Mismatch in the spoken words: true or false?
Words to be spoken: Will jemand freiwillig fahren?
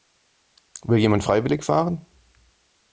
false